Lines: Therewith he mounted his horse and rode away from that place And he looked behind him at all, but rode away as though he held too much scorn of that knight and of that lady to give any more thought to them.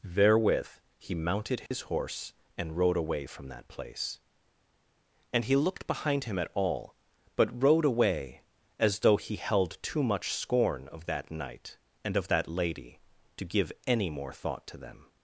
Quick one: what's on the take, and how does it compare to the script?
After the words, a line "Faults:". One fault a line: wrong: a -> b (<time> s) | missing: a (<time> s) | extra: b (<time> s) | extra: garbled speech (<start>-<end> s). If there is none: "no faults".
Therewith he mounted his horse and rode away from that place And he looked behind him at all, but rode away as though he held too much scorn of that knight and of that lady to give any more thought to them.
Faults:
no faults